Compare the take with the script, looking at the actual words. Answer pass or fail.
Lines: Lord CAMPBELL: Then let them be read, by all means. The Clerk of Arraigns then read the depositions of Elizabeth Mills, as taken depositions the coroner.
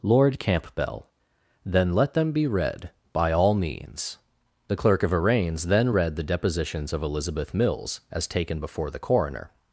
fail